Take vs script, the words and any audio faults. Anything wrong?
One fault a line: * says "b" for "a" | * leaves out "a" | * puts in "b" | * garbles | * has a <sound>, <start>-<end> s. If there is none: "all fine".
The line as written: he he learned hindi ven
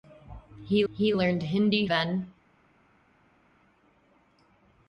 all fine